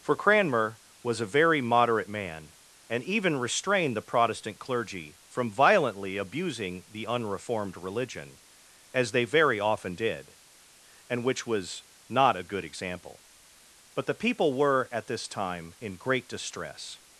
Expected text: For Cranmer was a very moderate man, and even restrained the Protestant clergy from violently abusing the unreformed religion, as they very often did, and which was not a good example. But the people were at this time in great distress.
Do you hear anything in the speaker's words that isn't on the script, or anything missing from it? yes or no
no